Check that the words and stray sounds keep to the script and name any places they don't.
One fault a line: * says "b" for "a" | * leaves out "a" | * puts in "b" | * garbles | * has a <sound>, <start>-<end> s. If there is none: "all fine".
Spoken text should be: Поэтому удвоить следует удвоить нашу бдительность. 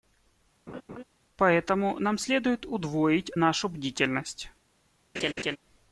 * has a laugh, 0.7-1.0 s
* says "нам" for "удвоить"
* has a laugh, 5.1-5.6 s